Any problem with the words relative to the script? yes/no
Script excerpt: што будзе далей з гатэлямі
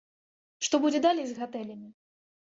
no